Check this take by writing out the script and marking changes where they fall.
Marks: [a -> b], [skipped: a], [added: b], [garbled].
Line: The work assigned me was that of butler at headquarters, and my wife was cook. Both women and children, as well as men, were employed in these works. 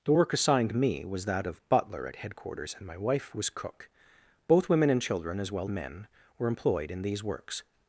The work assigned me was that of butler at headquarters, and my wife was cook. Both women and children, as well [skipped: as] men, were employed in these works.